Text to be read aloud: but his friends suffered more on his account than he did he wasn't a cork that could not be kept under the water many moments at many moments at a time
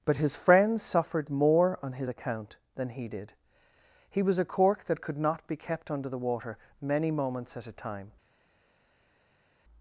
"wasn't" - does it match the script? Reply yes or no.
no